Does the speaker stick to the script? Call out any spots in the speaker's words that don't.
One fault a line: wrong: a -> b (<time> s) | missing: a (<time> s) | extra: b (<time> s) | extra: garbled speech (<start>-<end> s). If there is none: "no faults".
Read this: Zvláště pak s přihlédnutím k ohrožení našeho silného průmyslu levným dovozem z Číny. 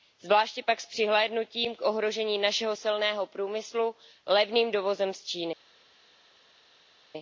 no faults